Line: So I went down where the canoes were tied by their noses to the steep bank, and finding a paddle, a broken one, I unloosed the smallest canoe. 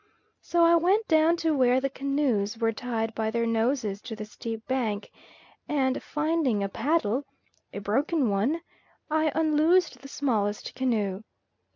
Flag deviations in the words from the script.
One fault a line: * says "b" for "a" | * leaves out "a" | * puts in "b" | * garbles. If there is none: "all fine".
* puts in "to"